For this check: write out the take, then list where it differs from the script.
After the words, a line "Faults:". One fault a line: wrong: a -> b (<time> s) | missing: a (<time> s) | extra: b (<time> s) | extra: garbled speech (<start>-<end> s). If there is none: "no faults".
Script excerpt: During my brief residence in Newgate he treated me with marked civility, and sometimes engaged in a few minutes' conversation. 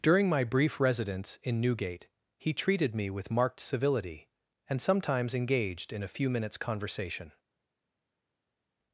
During my brief residence in Newgate he treated me with marked civility, and sometimes engaged in a few minutes' conversation.
Faults:
no faults